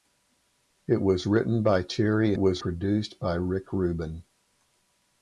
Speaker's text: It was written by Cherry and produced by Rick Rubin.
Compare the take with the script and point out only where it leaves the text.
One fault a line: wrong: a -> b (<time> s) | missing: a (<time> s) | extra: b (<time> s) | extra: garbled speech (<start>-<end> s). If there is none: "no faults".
wrong: and -> was (2.4 s)